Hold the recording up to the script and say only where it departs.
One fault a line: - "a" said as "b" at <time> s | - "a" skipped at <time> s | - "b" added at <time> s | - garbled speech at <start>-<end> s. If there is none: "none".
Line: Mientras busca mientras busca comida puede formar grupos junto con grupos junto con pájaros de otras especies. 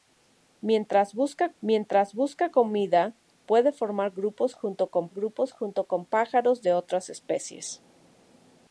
none